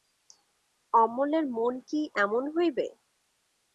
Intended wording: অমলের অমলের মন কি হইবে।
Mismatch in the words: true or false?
true